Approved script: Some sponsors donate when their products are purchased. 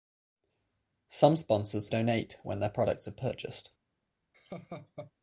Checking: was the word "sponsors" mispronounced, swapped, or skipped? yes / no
no